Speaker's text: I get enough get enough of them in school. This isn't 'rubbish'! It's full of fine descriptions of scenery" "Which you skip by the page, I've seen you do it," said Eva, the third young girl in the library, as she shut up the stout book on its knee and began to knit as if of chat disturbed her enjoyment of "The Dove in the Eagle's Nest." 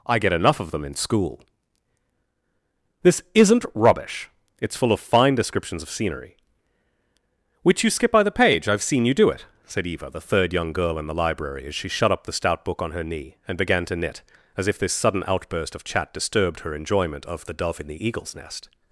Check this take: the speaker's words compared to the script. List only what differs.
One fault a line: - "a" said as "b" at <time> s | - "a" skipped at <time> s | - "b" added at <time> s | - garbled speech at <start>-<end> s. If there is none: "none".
- "get enough" skipped at 0.6 s
- "its" said as "her" at 12.9 s
- "this sudden outburst" added at 14.8 s